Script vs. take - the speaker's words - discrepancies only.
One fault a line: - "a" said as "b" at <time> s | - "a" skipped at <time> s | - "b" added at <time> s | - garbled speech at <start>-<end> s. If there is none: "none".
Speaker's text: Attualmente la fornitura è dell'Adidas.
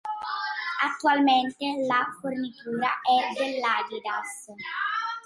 none